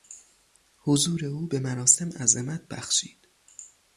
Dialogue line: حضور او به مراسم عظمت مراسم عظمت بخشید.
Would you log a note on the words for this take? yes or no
yes